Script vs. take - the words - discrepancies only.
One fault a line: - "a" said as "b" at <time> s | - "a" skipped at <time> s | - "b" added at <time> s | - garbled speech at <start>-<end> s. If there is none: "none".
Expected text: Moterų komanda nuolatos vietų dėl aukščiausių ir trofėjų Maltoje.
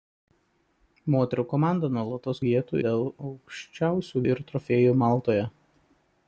none